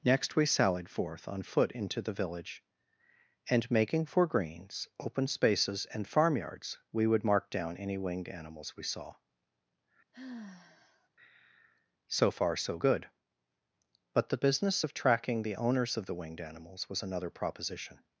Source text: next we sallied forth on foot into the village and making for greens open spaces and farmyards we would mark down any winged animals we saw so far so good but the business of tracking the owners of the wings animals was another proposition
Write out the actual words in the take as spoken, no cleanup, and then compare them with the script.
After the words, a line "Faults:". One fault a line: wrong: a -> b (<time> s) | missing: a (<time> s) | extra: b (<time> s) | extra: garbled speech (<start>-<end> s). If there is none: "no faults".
next we sallied forth on foot into the village and making for greens open spaces and farmyards we would mark down any winged animals we saw so far so good but the business of tracking the owners of the winged animals was another proposition
Faults:
wrong: wings -> winged (16.2 s)